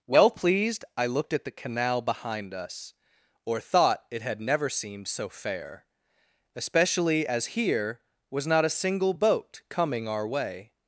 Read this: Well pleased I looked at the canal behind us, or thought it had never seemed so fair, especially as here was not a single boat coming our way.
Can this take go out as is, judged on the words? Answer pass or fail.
pass